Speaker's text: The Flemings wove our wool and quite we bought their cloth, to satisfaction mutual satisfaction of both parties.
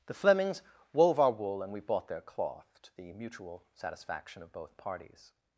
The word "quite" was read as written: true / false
false